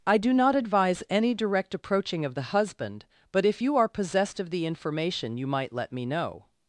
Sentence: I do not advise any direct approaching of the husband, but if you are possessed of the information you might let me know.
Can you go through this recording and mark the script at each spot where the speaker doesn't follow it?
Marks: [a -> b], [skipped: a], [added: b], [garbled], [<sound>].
I do not advise any direct approaching of the husband, but if you are possessed of the information you might let me know.